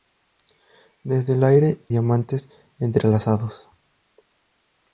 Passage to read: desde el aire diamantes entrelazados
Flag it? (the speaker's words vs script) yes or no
no